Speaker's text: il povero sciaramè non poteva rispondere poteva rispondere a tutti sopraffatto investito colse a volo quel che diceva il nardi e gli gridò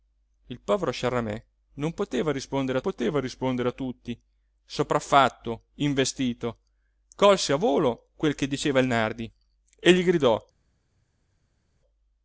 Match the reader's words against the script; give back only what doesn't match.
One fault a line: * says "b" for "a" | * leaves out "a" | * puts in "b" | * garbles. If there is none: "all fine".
all fine